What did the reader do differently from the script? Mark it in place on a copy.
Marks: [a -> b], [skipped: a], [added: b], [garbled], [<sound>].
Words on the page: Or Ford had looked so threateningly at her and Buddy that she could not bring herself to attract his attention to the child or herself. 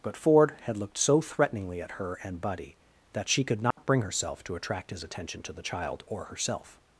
[Or -> But] Ford had looked so threateningly at her and Buddy that she could not [dropout] bring herself to attract his attention to the child or herself.